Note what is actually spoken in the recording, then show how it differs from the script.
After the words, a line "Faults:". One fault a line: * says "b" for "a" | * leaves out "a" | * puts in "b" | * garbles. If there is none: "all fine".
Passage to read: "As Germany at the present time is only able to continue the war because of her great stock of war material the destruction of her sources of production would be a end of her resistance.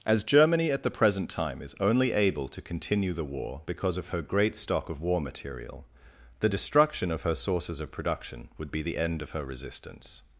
"As Germany at the present time is only able to continue the war because of her great stock of war material the destruction of her sources of production would be the end of her resistance.
Faults:
* says "the" for "a"